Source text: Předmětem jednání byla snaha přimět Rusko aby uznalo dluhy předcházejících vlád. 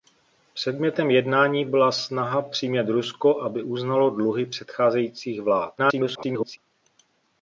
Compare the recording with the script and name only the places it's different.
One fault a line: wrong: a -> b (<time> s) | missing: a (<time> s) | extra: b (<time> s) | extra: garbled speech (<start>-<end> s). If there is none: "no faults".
extra: garbled speech (5.8-6.6 s)